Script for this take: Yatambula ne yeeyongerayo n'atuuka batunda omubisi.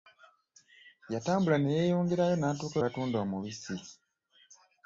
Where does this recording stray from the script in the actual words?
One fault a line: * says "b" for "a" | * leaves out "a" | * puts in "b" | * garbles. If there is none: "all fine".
all fine